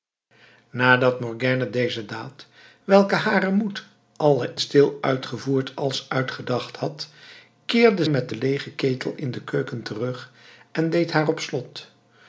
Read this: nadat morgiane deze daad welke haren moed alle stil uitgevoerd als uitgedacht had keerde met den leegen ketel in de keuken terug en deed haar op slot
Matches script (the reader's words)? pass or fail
pass